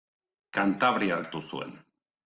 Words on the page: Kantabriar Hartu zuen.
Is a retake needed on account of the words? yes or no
no